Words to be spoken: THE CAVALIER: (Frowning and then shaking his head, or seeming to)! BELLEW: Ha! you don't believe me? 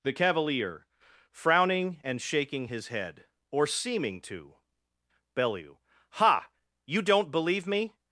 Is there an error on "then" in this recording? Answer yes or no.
yes